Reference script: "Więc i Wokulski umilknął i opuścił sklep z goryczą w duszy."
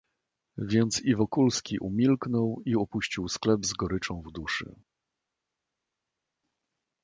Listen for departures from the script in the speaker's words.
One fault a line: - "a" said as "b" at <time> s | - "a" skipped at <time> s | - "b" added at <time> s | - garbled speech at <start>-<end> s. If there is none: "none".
none